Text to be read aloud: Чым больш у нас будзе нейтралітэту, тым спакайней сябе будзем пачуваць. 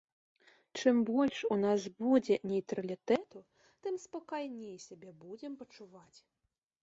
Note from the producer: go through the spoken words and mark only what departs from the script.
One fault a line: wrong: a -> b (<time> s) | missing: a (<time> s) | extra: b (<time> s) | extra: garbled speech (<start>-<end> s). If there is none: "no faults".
no faults